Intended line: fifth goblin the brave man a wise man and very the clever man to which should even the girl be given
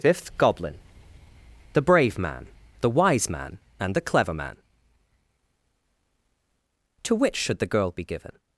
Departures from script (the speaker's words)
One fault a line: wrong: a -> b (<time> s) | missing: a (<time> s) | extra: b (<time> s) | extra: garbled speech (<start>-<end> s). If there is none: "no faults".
wrong: a -> the (2.8 s)
missing: very (3.9 s)
missing: even (7.6 s)